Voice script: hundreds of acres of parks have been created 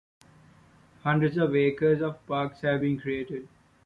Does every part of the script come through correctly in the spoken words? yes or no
yes